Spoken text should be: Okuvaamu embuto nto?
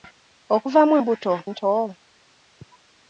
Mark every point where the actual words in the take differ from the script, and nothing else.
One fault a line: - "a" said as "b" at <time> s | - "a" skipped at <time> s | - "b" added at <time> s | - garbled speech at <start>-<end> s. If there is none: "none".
none